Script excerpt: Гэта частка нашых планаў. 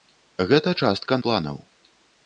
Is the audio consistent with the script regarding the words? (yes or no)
no